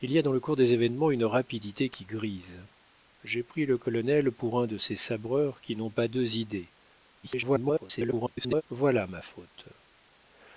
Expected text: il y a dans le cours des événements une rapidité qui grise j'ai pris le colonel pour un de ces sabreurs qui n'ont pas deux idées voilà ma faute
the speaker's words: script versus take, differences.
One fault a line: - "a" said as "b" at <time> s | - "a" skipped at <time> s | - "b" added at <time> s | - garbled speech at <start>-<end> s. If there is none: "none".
- garbled speech at 7.2-8.6 s